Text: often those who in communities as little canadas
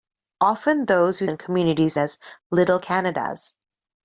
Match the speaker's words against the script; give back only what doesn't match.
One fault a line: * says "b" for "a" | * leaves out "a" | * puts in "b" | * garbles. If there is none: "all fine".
all fine